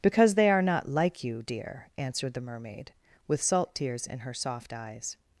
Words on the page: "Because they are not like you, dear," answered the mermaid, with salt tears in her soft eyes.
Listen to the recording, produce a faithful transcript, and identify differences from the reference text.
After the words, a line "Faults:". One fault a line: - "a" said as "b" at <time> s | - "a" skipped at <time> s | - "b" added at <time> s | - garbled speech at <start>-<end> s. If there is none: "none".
"Because they are not like you, dear," answered the mermaid, with salt tears in her soft eyes.
Faults:
none